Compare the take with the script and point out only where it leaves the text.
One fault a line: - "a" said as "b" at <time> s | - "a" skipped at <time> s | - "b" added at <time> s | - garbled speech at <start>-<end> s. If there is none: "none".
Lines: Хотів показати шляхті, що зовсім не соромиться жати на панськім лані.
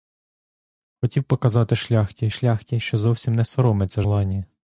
- "шляхті" added at 2.3 s
- "жати на панськім" skipped at 4.0 s